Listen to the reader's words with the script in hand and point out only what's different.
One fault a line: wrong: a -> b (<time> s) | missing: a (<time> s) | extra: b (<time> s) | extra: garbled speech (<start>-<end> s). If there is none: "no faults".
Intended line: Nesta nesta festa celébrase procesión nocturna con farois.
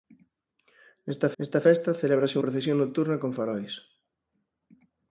no faults